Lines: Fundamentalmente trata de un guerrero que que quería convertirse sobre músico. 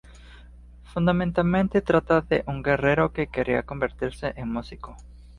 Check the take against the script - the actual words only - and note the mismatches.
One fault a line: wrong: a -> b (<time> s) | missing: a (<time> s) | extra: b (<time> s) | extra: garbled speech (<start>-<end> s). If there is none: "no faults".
missing: que (3.3 s)
wrong: sobre -> en (4.3 s)